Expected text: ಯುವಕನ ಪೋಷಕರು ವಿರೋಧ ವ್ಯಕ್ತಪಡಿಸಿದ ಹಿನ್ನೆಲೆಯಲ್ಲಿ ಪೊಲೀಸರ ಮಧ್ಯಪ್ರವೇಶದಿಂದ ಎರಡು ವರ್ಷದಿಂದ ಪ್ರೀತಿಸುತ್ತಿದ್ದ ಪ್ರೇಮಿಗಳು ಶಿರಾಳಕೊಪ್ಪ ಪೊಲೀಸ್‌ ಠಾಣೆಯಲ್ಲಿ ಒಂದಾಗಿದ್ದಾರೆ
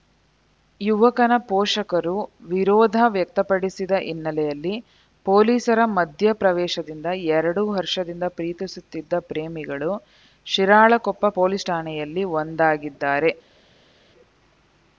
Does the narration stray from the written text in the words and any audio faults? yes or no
no